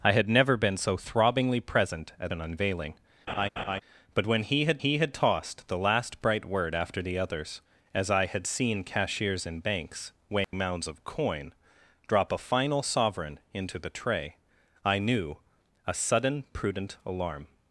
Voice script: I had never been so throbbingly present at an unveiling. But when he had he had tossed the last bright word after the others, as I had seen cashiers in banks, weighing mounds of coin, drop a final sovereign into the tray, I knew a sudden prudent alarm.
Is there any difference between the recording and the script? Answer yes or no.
no